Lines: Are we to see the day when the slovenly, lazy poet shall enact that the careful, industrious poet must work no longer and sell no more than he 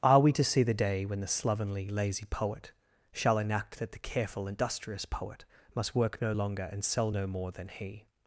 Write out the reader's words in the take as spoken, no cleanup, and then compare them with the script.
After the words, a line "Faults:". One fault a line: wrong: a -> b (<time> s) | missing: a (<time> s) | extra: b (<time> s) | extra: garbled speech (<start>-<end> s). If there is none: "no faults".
Are we to see the day when the slovenly, lazy poet shall enact that the careful, industrious poet must work no longer and sell no more than he
Faults:
no faults